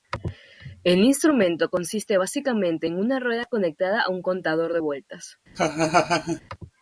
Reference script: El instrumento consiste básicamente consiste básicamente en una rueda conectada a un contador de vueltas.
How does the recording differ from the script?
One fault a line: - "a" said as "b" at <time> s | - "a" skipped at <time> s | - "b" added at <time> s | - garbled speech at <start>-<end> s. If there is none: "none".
- "consiste básicamente" skipped at 2.9 s